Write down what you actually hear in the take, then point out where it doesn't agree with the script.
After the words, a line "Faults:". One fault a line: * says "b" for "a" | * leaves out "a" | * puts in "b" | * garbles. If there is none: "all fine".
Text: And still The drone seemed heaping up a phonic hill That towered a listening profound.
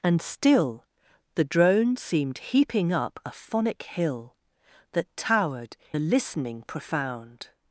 And still The drone seemed heaping up a phonic hill That towered a listening profound.
Faults:
all fine